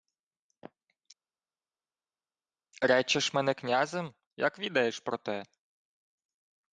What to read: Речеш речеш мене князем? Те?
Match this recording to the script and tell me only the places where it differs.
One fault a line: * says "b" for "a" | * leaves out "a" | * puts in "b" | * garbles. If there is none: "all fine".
* leaves out "речеш"
* puts in "Як відаєш про"